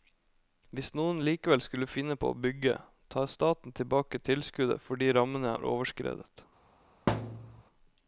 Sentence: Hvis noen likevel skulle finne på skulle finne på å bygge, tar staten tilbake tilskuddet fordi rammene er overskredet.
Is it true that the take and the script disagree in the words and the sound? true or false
true